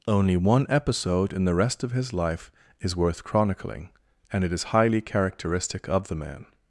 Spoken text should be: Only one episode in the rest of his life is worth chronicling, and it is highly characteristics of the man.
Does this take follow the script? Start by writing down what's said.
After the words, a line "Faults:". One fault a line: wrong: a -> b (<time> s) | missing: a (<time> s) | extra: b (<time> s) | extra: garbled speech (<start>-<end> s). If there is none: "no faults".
Only one episode in the rest of his life is worth chronicling, and it is highly characteristic of the man.
Faults:
wrong: characteristics -> characteristic (5.0 s)